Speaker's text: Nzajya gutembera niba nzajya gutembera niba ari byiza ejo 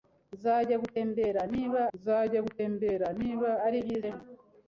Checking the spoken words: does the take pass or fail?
pass